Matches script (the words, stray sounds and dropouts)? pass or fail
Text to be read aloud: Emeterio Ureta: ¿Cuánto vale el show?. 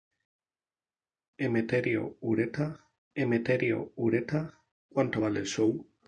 fail